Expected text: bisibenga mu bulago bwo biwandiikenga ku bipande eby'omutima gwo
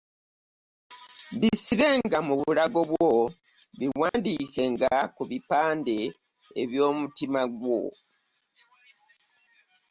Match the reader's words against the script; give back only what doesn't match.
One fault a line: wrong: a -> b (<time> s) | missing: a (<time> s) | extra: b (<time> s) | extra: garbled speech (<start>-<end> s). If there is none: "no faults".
no faults